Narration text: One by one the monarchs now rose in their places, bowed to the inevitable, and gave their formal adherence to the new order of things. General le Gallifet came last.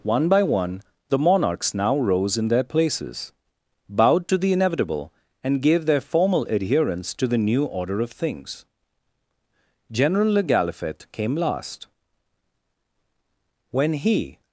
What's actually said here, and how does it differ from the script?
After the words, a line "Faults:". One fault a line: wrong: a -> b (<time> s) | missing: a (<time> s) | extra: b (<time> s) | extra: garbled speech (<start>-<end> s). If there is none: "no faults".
One by one the monarchs now rose in their places, bowed to the inevitable, and gave their formal adherence to the new order of things. General le Gallifet came last. When he
Faults:
extra: When he (13.7 s)